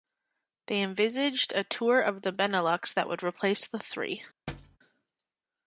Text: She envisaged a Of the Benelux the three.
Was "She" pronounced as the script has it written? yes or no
no